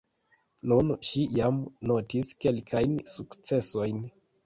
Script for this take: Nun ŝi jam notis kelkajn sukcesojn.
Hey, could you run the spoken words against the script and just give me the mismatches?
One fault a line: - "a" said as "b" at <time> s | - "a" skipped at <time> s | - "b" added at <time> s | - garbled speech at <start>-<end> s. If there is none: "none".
none